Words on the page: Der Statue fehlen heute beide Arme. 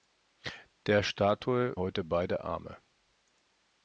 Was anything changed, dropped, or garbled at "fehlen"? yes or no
yes